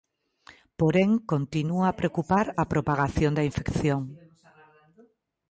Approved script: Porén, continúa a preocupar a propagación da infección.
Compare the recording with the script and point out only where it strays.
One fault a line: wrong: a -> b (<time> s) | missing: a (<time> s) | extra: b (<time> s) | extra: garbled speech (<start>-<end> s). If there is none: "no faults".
no faults